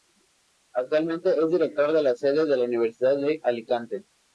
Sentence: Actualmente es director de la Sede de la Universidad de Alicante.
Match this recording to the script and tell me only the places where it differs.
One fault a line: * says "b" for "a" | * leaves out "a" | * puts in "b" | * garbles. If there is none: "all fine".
all fine